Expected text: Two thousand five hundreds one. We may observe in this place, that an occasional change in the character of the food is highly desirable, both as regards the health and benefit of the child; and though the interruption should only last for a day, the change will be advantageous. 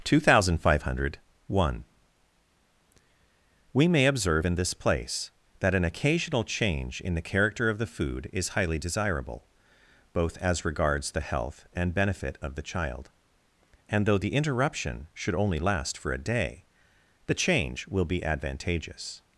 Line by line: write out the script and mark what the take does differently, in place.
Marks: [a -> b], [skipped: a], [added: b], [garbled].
Two thousand five [hundreds -> hundred] one. We may observe in this place, that an occasional change in the character of the food is highly desirable, both as regards the health and benefit of the child; and though the interruption should only last for a day, the change will be advantageous.